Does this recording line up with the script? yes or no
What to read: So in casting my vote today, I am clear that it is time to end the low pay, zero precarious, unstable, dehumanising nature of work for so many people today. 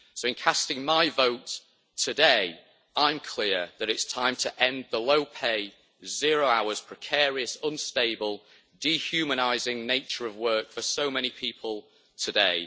no